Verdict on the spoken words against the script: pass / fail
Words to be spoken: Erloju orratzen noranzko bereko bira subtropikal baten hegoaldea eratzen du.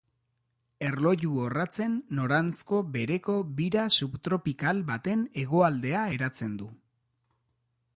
pass